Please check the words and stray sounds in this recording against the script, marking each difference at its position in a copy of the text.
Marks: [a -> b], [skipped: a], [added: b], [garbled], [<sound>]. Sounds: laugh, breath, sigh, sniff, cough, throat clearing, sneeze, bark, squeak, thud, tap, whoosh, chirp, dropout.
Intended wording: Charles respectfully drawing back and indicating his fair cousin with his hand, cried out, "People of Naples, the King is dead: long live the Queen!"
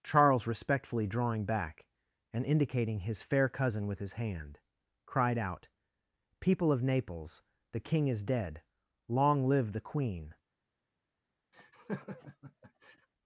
Charles respectfully drawing back and indicating his fair cousin with his hand, cried out, "People of Naples, the King is dead: long live the Queen!" [laugh]